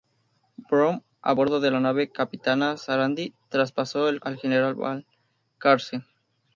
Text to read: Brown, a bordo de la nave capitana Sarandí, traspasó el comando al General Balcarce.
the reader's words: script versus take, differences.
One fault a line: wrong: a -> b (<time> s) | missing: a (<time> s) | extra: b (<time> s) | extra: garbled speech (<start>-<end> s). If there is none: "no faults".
missing: comando (4.2 s)